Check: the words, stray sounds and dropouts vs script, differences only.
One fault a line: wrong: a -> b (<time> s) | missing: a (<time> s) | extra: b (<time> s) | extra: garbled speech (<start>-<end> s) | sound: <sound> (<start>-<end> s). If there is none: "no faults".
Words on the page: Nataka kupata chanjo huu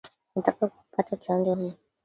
no faults